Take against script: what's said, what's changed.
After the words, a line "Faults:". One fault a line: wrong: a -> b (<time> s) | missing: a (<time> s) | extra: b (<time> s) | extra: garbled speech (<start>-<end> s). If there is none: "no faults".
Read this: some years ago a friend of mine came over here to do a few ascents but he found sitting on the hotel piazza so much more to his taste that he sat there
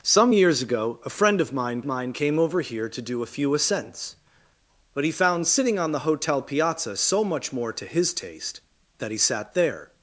some years ago a friend of mine mine came over here to do a few ascents but he found sitting on the hotel piazza so much more to his taste that he sat there
Faults:
extra: mine (1.8 s)